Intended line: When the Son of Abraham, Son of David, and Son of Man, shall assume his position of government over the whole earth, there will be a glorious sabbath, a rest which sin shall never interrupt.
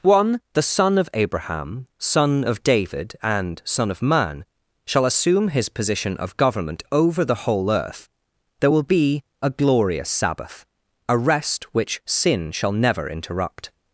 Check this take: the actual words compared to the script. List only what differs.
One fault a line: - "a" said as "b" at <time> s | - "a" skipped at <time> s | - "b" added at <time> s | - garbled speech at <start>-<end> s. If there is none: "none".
- "When" said as "One" at 0.0 s